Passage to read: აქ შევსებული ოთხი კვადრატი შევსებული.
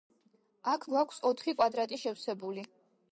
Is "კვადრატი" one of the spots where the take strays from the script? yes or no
no